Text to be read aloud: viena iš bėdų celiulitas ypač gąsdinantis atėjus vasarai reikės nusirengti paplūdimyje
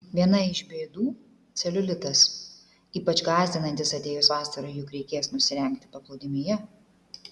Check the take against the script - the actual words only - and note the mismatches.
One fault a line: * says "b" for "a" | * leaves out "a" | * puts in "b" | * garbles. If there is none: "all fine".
* puts in "juk"